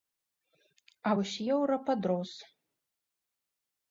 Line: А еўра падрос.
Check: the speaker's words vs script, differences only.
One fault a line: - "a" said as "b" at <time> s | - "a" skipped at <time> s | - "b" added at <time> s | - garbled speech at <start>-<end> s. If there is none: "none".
- "вось" added at 1.2 s